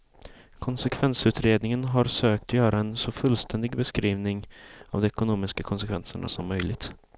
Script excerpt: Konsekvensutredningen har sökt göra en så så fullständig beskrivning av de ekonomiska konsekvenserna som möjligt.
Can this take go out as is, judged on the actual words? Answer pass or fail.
fail